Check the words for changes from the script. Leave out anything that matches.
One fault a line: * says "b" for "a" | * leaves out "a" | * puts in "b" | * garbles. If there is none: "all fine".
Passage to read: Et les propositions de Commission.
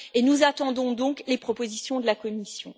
* puts in "nous attendons donc"
* puts in "la"